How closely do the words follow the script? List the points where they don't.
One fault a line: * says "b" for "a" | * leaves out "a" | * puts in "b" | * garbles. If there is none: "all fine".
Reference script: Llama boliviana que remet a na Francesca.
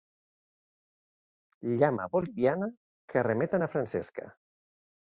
all fine